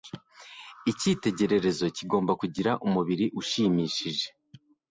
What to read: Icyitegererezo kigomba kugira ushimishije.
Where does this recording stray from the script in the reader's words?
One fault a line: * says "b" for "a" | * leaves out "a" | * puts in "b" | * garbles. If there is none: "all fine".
* puts in "umubiri"